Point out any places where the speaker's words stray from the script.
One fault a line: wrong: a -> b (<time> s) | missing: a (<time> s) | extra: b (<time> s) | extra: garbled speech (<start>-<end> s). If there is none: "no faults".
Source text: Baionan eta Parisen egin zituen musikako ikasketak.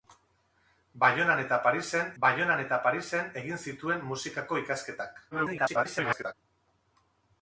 extra: baionan eta Parisen (2.2 s)
extra: garbled speech (5.3-6.3 s)